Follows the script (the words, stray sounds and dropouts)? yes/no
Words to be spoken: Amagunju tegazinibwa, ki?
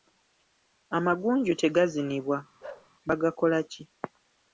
no